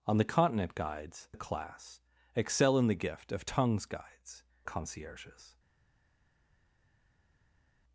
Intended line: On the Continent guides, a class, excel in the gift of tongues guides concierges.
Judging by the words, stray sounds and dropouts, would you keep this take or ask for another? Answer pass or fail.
pass